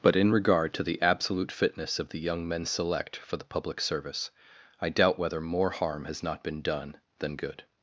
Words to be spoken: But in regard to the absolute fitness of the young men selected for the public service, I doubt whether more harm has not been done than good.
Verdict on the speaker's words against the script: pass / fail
fail